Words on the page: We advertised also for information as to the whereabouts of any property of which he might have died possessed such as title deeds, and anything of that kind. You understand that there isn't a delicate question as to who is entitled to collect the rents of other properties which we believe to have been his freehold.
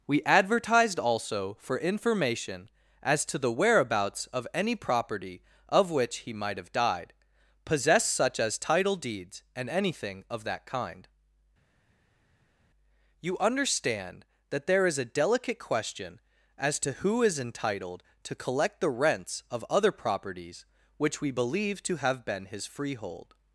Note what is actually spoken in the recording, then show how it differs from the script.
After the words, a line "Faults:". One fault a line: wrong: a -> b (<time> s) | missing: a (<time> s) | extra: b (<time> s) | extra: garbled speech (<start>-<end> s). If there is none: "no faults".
We advertised also for information as to the whereabouts of any property of which he might have died possessed such as title deeds, and anything of that kind. You understand that there is a delicate question as to who is entitled to collect the rents of other properties which we believe to have been his freehold.
Faults:
wrong: isn't -> is (14.9 s)